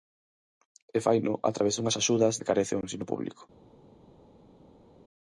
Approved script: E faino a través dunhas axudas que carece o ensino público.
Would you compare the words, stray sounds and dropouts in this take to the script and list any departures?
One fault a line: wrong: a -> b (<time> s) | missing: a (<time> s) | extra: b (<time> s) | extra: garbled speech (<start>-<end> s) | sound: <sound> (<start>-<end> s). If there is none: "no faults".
no faults